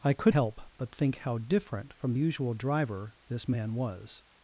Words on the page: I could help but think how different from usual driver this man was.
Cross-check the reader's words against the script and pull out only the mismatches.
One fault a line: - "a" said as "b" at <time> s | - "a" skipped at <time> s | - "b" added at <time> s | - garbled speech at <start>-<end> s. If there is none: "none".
none